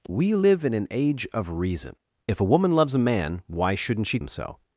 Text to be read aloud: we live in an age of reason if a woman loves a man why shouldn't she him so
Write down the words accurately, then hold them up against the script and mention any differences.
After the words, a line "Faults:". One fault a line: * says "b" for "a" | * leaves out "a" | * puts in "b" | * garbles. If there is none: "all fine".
we live in an age of reason if a woman loves a man why shouldn't she him so
Faults:
all fine